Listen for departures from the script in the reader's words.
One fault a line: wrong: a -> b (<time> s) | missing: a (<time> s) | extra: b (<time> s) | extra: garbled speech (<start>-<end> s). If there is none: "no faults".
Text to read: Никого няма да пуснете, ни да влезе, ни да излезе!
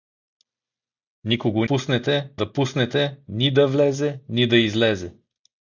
wrong: няма -> пуснете (1.7 s)